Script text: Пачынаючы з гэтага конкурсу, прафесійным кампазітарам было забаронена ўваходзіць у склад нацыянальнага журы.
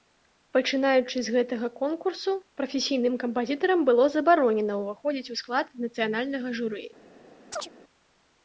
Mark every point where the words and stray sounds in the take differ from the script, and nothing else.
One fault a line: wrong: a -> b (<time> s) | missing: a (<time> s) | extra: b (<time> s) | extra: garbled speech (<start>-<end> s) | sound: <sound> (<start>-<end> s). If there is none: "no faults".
sound: chirp (7.5-7.7 s)